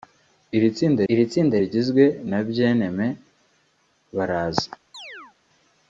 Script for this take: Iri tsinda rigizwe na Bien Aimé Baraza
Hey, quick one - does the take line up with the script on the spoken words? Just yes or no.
no